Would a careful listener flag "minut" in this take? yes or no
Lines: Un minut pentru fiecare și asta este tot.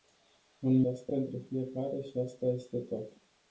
yes